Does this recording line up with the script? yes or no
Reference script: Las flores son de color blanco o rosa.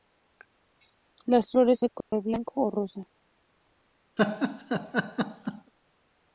no